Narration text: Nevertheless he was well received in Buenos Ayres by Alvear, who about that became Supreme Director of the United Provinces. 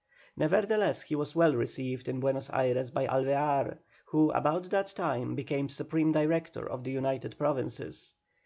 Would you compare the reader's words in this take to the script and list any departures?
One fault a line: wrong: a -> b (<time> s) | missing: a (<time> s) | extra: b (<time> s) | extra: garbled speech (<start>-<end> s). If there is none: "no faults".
extra: time (4.9 s)